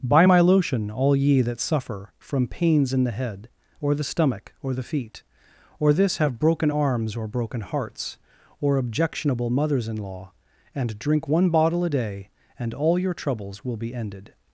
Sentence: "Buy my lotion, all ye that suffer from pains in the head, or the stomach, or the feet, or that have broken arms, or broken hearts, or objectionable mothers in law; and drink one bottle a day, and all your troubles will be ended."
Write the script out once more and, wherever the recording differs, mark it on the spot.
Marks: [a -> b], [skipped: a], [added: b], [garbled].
"Buy my lotion, all ye that suffer from pains in the head, or the stomach, or the feet, or [that -> this] have broken arms, or broken hearts, or objectionable mothers in law; and drink one bottle a day, and all your troubles will be ended."